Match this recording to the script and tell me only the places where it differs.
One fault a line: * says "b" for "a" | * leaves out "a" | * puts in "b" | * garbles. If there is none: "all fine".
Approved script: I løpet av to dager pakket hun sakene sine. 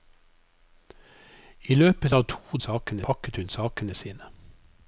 * says "sakene" for "dager"